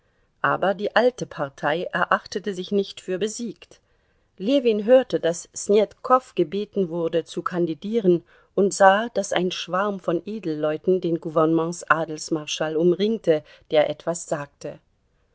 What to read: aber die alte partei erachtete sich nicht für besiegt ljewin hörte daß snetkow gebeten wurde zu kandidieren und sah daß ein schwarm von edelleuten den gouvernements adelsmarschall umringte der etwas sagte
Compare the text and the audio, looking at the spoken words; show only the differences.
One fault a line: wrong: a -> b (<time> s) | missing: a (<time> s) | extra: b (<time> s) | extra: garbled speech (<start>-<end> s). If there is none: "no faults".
no faults